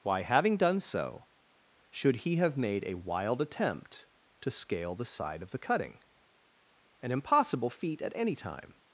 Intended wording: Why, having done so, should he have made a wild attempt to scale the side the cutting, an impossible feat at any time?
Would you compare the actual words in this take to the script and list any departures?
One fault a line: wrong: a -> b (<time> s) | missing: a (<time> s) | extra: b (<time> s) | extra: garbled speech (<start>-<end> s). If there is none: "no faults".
extra: of (5.4 s)